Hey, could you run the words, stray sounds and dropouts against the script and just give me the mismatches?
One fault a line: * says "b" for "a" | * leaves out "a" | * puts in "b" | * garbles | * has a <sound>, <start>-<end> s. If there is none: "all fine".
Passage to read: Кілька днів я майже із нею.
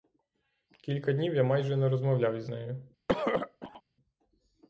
* puts in "не розмовляв"
* has a throat clearing, 3.1-3.8 s